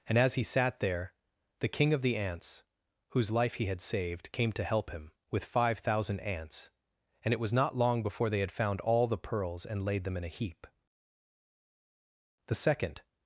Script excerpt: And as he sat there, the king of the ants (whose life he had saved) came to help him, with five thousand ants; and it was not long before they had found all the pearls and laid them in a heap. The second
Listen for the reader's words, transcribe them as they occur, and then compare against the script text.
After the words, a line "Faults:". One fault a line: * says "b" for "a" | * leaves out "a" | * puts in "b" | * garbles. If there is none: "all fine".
And as he sat there, the king of the ants (whose life he had saved) came to help him, with five thousand ants; and it was not long before they had found all the pearls and laid them in a heap. The second
Faults:
all fine